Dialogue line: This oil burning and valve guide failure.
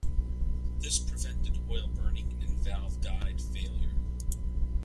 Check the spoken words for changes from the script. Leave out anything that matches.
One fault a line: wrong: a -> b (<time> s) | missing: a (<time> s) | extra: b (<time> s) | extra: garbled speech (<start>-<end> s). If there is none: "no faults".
extra: prevented (1.0 s)